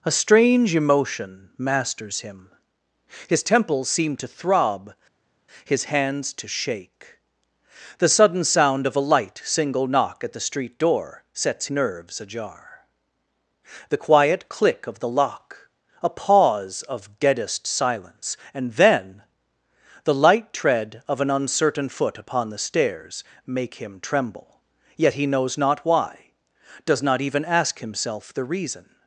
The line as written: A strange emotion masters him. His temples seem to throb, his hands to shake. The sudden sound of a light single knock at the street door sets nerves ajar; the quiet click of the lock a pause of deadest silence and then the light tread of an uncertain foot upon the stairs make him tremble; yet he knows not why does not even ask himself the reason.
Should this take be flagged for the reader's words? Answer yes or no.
no